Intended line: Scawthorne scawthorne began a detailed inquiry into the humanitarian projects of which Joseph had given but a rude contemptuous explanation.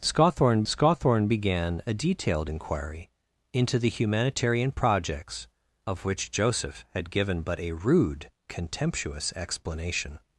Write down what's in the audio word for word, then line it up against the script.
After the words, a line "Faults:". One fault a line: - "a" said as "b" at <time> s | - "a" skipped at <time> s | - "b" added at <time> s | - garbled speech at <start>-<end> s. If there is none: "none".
Scawthorne scawthorne began a detailed inquiry into the humanitarian projects of which Joseph had given but a rude contemptuous explanation.
Faults:
none